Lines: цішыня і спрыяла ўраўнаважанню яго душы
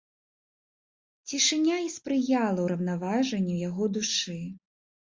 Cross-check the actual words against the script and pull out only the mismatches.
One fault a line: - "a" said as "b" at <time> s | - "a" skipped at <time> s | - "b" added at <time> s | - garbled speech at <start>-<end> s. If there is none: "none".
none